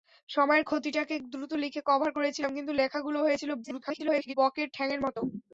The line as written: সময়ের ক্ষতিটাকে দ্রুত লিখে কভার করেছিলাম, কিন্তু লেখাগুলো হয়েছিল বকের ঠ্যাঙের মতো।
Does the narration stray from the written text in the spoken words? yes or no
yes